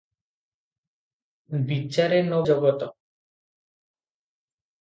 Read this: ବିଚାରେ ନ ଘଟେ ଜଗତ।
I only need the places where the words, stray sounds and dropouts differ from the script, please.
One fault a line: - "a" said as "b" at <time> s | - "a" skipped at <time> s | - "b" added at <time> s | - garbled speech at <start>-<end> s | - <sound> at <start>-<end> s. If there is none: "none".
- "ଘଟେ" skipped at 2.4 s